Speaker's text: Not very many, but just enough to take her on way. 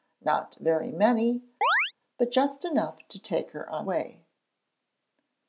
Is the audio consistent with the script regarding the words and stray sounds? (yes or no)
no